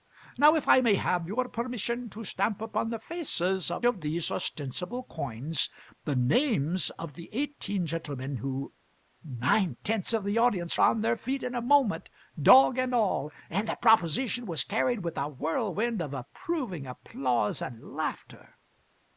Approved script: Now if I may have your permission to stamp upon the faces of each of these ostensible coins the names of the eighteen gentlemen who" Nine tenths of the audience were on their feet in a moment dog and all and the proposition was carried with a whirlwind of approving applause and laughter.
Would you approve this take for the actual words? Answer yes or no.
no